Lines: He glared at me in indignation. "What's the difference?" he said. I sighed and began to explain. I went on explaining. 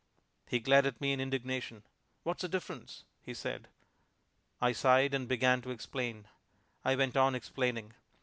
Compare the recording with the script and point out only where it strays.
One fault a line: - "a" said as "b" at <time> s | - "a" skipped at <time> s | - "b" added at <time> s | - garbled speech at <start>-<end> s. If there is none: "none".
none